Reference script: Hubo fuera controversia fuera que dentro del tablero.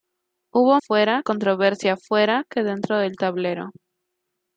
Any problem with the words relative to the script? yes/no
no